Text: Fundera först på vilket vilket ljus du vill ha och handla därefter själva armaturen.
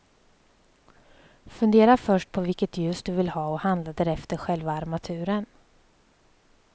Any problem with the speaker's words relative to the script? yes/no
yes